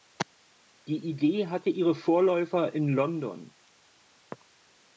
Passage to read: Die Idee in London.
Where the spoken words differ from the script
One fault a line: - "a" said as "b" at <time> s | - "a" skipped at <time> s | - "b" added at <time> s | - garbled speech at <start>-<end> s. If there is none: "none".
- "hatte ihre Vorläufer" added at 1.4 s